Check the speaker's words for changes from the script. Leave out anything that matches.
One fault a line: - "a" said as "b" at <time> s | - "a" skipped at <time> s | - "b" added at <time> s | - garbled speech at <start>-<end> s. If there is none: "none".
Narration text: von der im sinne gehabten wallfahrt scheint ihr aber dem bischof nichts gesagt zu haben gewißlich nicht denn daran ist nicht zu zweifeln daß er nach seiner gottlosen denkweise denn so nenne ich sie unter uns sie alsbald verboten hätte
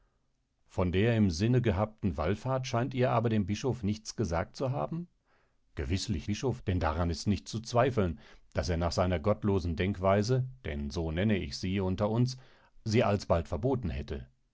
- "nicht" said as "bischof" at 6.2 s